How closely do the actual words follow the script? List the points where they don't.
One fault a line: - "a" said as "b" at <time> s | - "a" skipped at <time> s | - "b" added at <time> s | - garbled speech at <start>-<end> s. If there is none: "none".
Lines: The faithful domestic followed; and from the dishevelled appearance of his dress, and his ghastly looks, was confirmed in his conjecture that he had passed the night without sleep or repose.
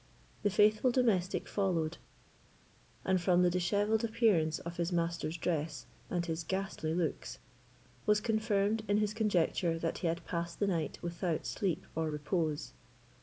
- "master's" added at 4.9 s